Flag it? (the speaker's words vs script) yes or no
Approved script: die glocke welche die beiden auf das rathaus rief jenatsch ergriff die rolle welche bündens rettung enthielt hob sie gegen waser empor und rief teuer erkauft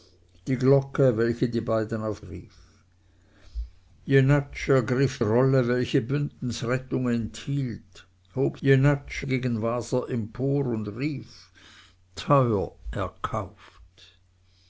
yes